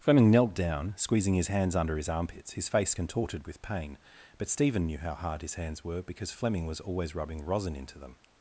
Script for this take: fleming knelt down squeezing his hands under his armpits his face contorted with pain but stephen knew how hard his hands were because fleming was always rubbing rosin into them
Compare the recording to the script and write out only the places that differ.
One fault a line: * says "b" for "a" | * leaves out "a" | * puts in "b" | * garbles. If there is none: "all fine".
all fine